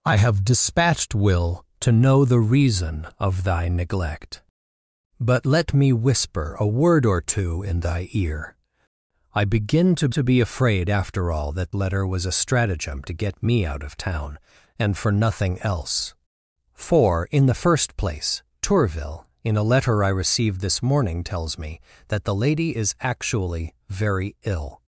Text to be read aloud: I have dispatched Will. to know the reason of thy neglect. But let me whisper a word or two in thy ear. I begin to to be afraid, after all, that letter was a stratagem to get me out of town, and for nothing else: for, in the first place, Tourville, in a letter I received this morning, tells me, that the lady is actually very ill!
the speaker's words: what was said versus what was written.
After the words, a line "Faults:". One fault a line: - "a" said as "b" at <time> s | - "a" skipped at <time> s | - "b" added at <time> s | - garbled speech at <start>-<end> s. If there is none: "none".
I have dispatched Will. to know the reason of thy neglect. But let me whisper a word or two in thy ear. I begin to to be afraid, after all, that letter was a stratagem to get me out of town, and for nothing else: for, in the first place, Tourville, in a letter I received this morning, tells me, that the lady is actually very ill!
Faults:
none